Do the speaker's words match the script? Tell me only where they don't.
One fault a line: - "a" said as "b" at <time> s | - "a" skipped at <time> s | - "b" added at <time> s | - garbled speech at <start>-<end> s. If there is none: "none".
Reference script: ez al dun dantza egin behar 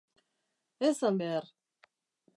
- "dun dantza egin" skipped at 1.2 s